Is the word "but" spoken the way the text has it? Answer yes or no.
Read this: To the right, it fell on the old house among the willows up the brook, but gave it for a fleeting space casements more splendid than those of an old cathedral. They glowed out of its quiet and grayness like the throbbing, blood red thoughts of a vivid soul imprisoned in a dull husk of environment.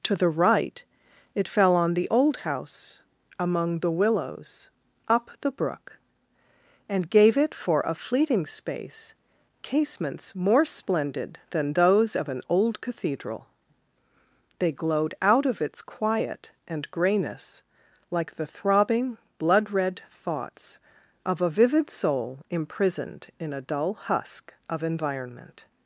no